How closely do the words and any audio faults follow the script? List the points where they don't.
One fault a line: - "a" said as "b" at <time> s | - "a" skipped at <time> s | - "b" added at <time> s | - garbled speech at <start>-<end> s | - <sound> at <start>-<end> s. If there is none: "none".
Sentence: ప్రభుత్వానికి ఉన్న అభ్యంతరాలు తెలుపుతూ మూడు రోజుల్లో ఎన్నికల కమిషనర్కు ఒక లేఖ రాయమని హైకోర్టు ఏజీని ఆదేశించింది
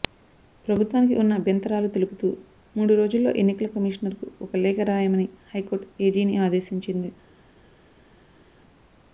none